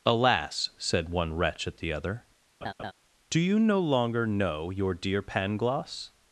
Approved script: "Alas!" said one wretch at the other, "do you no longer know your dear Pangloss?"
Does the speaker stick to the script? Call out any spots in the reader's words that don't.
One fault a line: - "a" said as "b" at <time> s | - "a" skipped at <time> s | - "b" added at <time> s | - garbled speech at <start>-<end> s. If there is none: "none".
none